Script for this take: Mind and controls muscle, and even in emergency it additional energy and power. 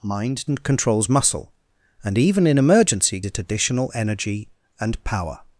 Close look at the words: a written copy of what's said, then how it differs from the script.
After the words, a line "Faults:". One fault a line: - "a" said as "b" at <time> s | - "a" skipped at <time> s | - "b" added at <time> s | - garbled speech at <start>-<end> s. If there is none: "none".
Mind and controls muscle, and even in emergency it additional energy and power.
Faults:
none